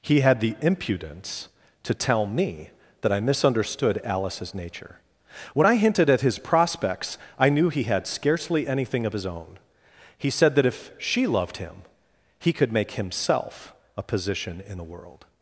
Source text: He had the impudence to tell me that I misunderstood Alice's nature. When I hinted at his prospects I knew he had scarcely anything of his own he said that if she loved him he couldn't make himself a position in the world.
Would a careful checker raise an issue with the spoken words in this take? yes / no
yes